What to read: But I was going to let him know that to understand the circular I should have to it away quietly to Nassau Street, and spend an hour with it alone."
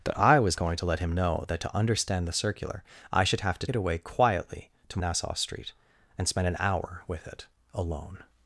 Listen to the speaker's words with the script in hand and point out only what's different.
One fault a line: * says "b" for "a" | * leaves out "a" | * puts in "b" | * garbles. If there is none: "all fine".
all fine